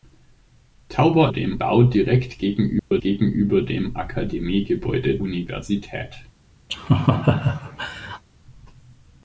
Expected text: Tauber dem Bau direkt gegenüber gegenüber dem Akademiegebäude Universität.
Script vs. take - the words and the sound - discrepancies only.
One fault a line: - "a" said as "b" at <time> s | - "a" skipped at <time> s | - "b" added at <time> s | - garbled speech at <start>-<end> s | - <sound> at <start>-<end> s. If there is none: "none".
- dropout at 2.8-2.9 s
- laugh at 6.7-8.2 s